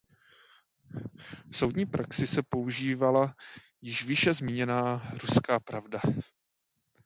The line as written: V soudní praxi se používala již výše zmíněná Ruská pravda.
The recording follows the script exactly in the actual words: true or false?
true